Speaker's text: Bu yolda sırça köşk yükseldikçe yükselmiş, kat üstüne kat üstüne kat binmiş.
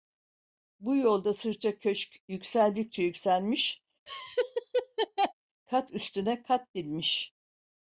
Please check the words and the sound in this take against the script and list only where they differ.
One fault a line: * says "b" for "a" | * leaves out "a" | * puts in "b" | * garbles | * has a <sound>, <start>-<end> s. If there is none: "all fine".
* has a laugh, 4.1-5.3 s
* leaves out "üstüne kat"